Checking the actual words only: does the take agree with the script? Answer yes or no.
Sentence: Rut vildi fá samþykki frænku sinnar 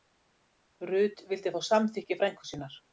yes